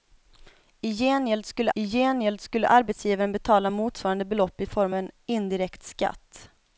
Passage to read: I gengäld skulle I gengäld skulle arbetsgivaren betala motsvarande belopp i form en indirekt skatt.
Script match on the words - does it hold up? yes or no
yes